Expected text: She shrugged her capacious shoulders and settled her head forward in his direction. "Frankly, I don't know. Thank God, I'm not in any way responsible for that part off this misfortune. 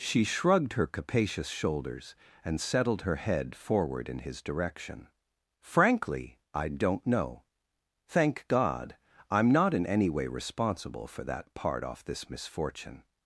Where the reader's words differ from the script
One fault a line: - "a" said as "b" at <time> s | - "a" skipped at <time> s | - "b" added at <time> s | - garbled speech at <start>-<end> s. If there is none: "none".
none